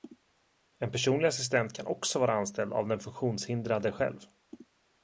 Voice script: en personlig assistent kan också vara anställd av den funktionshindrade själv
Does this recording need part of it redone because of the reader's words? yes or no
no